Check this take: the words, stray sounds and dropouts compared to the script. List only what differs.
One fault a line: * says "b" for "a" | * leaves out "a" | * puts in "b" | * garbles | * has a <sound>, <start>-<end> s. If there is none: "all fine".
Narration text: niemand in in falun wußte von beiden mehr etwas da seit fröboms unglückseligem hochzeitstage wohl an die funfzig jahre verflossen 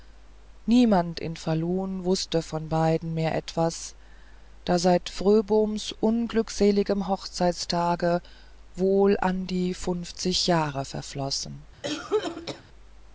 * leaves out "in"
* has a cough, 11.8-12.6 s